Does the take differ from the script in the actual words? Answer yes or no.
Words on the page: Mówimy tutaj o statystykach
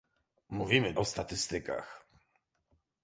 yes